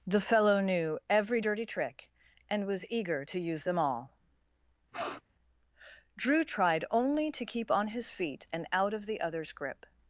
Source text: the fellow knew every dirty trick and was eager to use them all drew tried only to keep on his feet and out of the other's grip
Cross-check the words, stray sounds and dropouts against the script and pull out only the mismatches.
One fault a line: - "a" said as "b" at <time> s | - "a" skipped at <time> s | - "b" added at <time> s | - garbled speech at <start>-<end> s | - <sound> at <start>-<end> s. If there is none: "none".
- sniff at 4.9-5.2 s